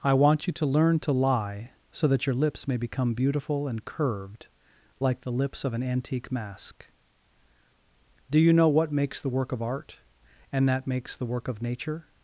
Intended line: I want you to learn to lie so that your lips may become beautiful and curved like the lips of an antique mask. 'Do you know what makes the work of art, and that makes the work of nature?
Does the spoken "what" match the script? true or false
true